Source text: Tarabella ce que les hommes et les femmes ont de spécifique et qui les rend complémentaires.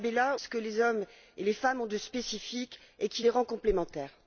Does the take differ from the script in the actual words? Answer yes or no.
no